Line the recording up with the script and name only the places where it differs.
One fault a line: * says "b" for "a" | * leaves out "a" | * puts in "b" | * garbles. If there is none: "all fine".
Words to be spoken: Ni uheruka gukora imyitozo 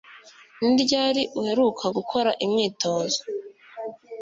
* puts in "ryari"